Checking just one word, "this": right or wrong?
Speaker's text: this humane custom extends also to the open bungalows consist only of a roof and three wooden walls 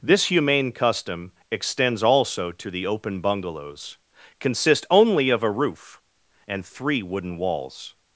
right